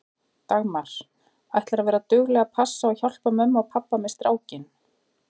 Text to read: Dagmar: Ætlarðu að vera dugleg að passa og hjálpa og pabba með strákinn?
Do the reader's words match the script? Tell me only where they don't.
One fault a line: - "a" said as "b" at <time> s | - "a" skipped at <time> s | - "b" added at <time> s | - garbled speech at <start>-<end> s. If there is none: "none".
- "mömmu" added at 3.4 s